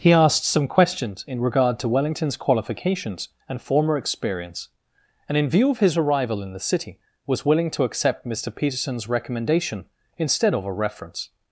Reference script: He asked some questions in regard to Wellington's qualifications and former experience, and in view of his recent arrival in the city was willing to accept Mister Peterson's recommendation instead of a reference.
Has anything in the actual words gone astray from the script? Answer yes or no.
yes